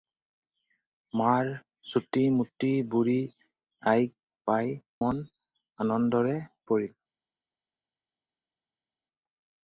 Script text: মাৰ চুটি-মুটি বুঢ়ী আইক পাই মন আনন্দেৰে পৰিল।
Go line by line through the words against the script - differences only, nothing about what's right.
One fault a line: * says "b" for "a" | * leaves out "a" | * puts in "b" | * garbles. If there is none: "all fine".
all fine